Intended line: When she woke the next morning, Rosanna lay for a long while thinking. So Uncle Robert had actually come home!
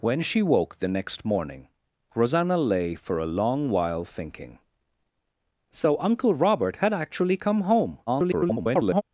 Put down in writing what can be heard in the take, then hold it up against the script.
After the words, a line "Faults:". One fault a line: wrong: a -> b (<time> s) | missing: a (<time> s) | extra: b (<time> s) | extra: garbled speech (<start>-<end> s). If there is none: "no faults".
When she woke the next morning, Rosanna lay for a long while thinking. So Uncle Robert had actually come home! [garbled]
Faults:
extra: garbled speech (8.1-9.0 s)